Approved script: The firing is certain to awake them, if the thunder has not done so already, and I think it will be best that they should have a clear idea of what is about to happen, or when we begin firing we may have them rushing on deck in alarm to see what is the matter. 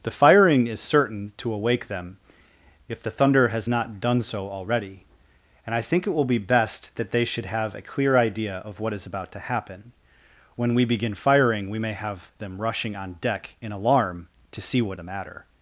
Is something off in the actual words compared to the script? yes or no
yes